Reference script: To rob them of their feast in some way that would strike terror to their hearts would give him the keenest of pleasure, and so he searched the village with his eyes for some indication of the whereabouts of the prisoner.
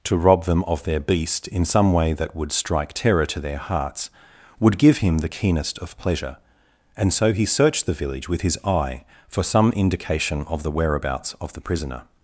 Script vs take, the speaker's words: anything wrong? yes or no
yes